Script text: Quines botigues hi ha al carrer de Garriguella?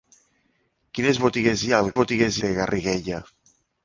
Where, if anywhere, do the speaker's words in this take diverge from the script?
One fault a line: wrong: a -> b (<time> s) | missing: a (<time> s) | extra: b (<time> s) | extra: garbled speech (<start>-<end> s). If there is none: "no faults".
wrong: carrer -> botigues (2.0 s)